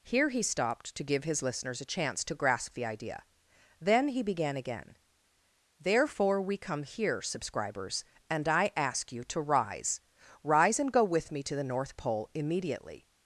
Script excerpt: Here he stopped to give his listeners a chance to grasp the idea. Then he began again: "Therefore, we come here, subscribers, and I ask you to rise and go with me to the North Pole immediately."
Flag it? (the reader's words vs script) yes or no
yes